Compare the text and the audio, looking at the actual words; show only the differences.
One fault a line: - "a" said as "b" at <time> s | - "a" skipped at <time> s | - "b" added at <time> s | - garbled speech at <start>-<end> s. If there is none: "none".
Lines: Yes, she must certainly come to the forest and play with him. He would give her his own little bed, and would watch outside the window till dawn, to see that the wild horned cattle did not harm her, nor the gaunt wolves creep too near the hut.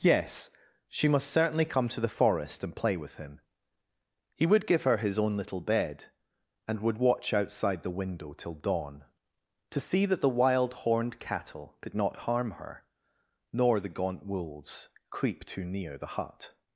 none